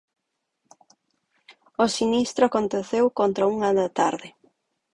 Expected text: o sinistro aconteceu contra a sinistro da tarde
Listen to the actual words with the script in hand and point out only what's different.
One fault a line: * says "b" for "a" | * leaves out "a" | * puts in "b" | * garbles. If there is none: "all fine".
* says "unha" for "sinistro"